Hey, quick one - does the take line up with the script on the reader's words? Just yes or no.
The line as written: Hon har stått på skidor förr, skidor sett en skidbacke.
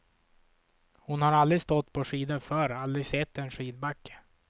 no